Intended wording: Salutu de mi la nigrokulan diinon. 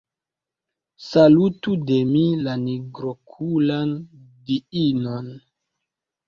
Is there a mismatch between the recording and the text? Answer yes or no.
no